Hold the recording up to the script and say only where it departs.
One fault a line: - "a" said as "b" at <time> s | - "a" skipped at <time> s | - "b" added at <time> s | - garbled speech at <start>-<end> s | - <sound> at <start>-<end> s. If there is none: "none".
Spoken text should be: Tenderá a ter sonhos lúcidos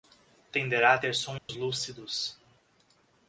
- dropout at 1.4-1.5 s